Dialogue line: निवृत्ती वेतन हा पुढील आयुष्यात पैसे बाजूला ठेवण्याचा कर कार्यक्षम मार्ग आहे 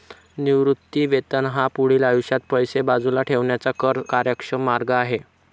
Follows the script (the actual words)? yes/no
yes